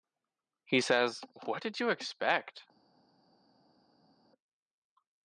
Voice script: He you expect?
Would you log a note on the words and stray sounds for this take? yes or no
yes